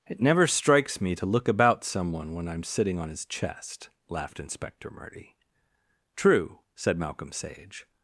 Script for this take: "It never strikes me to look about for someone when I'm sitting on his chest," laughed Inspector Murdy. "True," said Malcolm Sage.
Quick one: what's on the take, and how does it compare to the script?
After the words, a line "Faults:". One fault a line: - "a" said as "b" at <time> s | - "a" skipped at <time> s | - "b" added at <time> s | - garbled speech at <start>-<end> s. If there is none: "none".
"It never strikes me to look about someone when I'm sitting on his chest," laughed Inspector Murdy. "True," said Malcolm Sage.
Faults:
- "for" skipped at 1.8 s